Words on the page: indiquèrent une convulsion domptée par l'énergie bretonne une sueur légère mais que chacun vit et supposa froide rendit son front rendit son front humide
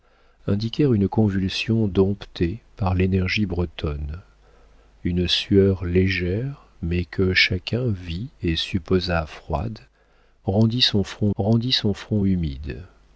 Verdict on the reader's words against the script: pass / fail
pass